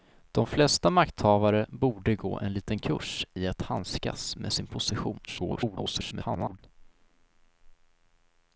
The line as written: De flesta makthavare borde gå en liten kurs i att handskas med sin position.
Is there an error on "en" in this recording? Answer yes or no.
no